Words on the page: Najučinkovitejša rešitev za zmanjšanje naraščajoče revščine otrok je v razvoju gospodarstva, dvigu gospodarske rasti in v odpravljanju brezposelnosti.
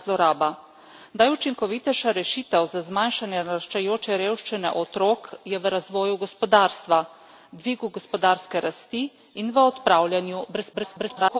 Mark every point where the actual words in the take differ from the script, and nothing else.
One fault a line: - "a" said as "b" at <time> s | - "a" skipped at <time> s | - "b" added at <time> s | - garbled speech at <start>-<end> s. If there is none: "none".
- garbled speech at 10.7-11.4 s